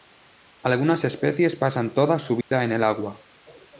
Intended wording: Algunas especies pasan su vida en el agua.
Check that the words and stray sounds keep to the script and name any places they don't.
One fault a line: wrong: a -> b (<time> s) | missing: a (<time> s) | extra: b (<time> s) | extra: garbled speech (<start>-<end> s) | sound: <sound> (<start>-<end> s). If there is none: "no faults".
extra: toda (1.9 s)
sound: dropout (2.4-2.5 s)